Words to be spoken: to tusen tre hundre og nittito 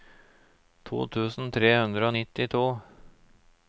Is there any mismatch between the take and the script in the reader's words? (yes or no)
no